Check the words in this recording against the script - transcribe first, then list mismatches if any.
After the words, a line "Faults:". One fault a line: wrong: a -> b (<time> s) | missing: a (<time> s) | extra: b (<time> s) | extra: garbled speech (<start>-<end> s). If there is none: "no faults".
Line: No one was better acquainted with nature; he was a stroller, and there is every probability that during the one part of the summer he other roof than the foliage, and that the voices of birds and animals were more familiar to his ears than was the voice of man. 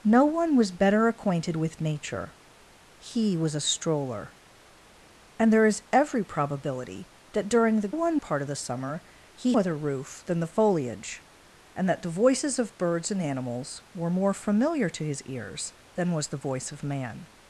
No one was better acquainted with nature; he was a stroller, and there is every probability that during the one part of the summer he other roof than the foliage, and that the voices of birds and animals were more familiar to his ears than was the voice of man.
Faults:
no faults